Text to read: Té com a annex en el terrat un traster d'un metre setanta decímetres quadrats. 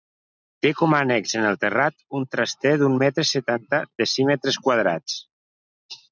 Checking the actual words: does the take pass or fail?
pass